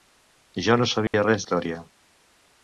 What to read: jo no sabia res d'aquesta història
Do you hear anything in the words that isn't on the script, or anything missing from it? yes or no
yes